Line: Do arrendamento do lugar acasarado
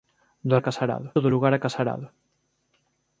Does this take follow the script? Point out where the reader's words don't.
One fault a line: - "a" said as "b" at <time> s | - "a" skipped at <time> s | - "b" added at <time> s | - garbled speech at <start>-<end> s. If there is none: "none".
- "arrendamento" said as "acasarado" at 0.6 s